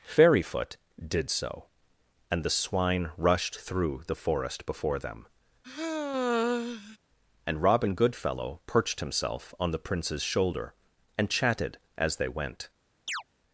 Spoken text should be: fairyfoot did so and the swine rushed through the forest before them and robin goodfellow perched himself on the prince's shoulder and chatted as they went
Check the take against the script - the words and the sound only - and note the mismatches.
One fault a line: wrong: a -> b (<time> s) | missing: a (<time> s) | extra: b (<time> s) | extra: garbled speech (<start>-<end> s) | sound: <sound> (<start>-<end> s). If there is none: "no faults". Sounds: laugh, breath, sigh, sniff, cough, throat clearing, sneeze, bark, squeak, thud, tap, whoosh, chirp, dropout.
sound: sigh (5.6-7.0 s)
sound: chirp (13.1-13.2 s)